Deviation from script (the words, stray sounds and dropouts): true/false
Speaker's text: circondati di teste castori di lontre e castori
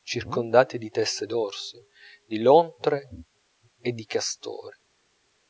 true